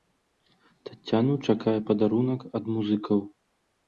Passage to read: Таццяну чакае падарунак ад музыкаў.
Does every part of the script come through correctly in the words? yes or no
yes